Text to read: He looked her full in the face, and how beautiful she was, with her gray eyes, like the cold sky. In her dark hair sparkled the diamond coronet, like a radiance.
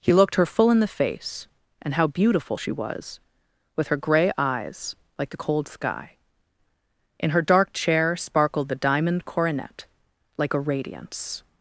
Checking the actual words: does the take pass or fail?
fail